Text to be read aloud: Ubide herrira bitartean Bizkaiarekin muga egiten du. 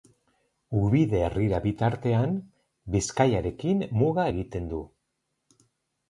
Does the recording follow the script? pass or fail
pass